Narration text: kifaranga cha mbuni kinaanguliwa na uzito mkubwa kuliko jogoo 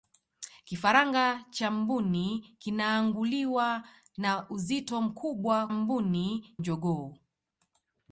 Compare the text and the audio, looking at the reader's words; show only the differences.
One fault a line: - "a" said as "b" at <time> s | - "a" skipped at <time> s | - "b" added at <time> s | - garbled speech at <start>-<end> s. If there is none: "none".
- "kuliko" said as "mbuni" at 5.7 s